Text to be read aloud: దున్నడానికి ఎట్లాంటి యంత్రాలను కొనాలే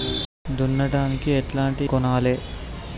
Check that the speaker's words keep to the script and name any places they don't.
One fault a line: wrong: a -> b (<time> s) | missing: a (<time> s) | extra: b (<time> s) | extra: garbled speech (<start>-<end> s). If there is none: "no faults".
missing: యంత్రాలను (1.9 s)